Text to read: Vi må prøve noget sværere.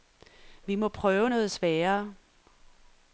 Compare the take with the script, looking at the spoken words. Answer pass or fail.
pass